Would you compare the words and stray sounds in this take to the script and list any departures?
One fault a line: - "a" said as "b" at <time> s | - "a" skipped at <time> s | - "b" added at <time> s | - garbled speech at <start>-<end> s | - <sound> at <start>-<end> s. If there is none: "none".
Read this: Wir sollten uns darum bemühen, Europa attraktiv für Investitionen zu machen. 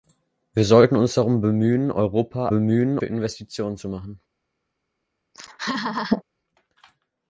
- "attraktiv" said as "bemühen" at 2.5 s
- laugh at 5.3-6.2 s